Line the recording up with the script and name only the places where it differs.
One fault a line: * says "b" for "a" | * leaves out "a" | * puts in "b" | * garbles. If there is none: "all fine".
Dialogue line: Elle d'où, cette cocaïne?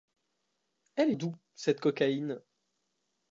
all fine